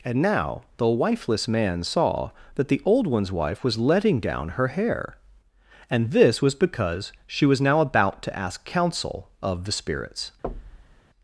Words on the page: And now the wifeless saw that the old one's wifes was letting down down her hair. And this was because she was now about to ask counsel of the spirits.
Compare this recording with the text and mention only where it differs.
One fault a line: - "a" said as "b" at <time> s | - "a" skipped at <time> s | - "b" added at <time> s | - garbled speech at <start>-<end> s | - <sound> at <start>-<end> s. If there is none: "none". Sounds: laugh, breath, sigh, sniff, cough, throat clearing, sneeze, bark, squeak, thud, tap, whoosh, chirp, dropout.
- "man" added at 1.5 s
- "wifes" said as "wife" at 3.3 s
- "down" skipped at 4.5 s
- thud at 10.4-11.0 s